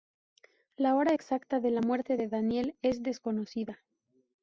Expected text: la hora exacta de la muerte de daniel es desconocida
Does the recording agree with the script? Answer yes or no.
yes